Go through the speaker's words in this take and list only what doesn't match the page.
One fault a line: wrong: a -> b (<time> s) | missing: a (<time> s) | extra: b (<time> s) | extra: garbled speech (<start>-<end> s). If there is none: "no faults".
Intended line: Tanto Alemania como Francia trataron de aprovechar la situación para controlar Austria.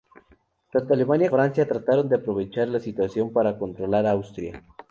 missing: como (1.3 s)